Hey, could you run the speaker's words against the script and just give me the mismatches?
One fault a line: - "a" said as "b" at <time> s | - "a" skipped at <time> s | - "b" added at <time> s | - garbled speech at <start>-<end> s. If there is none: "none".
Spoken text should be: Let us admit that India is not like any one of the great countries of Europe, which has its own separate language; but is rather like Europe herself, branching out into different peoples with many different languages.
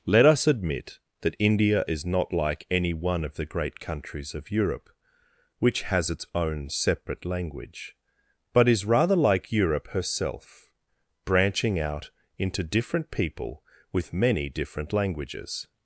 - "peoples" said as "people" at 13.1 s